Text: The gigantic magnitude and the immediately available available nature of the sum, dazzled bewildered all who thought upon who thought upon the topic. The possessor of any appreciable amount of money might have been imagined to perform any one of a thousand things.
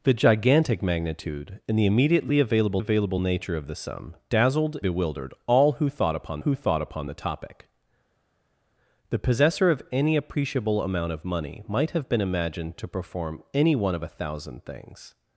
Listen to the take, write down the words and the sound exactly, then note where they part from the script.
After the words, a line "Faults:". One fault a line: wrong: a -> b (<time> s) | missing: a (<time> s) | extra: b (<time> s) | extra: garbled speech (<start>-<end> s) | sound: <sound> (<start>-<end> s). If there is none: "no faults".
The gigantic magnitude and the immediately available available nature of the sum, dazzled bewildered all who thought upon who thought upon the topic. The possessor of any appreciable amount of money might have been imagined to perform any one of a thousand things.
Faults:
no faults